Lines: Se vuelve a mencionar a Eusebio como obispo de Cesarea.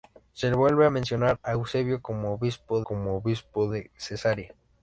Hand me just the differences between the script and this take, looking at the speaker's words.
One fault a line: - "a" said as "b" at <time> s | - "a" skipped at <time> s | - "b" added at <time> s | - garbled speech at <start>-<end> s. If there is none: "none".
- "como obispo" added at 2.8 s